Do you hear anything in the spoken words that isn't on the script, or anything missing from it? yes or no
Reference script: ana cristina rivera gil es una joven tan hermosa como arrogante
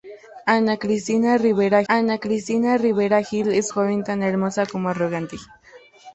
yes